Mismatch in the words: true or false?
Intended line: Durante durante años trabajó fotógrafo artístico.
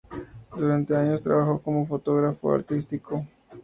true